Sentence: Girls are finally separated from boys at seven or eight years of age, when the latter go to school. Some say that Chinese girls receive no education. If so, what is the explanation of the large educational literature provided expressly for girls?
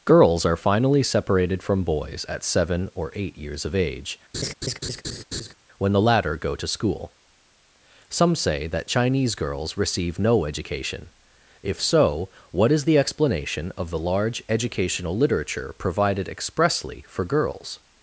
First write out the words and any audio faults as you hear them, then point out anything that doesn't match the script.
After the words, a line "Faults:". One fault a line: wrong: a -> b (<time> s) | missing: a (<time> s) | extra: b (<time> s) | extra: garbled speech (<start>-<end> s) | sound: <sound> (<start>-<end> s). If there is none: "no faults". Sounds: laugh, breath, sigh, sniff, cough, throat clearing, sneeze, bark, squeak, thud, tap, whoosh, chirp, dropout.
Girls are finally separated from boys at seven or eight years of age, when the latter go to school. Some say that Chinese girls receive no education. If so, what is the explanation of the large educational literature provided expressly for girls?
Faults:
sound: laugh (4.3-5.5 s)